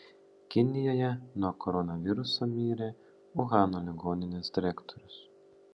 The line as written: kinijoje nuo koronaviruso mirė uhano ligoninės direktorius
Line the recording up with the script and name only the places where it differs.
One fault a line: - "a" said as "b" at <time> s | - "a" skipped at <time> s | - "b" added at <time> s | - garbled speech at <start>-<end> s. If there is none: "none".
none